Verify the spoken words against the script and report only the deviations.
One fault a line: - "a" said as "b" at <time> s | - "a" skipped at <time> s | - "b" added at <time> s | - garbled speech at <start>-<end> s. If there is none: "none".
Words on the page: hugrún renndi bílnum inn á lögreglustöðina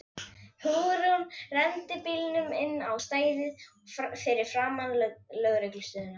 - "stæðið fyrir framan" added at 3.0 s